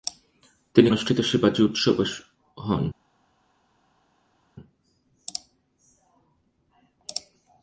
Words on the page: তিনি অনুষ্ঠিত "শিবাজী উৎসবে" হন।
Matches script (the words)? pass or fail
pass